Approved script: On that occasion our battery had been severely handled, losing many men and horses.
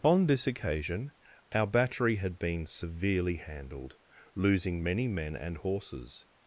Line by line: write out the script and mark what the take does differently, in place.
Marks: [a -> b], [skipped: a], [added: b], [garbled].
On [that -> this] occasion our battery had been severely handled, losing many men and horses.